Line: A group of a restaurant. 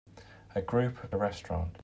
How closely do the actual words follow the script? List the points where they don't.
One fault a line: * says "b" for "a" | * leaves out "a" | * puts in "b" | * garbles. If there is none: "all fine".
all fine